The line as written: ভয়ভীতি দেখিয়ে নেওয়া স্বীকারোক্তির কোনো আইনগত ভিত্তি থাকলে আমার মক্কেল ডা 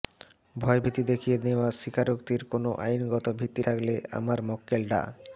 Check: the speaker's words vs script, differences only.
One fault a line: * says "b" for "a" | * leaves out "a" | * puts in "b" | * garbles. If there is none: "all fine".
all fine